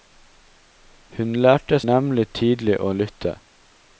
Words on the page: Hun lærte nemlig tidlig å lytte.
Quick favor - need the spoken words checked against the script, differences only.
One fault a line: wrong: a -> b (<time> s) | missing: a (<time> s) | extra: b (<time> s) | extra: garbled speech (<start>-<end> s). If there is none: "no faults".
no faults